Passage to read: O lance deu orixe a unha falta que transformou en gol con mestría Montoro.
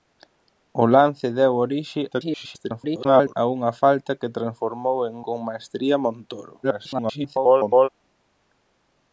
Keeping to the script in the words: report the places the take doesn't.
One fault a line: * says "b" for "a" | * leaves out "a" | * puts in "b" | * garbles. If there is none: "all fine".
* garbles
* leaves out "gol"
* garbles